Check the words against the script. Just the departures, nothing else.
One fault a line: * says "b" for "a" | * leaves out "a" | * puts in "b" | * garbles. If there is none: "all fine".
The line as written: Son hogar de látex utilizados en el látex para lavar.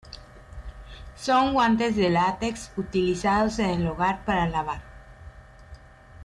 * says "guantes" for "hogar"
* says "hogar" for "látex"